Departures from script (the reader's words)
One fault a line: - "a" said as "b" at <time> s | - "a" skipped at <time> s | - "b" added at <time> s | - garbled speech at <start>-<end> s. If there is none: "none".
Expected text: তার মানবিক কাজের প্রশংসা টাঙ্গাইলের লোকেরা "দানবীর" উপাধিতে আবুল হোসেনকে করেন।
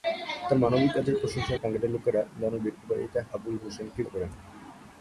none